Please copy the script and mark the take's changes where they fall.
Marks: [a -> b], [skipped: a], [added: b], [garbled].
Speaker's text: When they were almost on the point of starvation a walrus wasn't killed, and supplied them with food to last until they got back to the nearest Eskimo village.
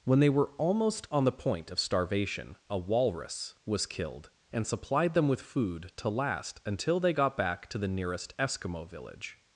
When they were almost on the point of starvation a walrus [wasn't -> was] killed, and supplied them with food to last until they got back to the nearest Eskimo village.